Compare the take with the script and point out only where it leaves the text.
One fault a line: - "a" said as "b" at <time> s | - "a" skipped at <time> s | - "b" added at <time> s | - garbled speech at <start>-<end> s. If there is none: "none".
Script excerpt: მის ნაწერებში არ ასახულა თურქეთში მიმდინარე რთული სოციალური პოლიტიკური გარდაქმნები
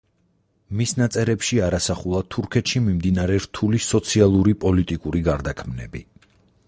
none